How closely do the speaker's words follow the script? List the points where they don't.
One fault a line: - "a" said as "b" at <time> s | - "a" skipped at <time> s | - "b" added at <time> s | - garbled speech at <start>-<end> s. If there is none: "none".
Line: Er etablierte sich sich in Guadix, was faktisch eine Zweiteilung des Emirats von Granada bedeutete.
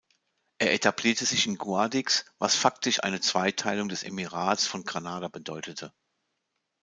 - "sich" skipped at 1.4 s